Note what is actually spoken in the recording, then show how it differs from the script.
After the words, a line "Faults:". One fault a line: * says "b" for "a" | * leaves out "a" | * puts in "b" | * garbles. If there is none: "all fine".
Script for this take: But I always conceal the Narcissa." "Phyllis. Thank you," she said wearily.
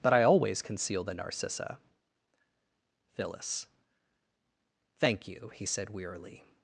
But I always conceal the Narcissa." "Phyllis. Thank you," he said wearily.
Faults:
* says "he" for "she"